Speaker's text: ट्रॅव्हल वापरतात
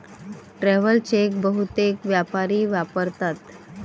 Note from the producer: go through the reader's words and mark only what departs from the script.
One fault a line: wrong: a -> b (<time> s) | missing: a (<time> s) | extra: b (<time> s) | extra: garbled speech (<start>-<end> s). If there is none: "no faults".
extra: चेक बहुतेक व्यापारी (1.0 s)